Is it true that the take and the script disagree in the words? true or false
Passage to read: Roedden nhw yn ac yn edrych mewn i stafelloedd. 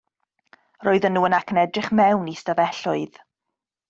false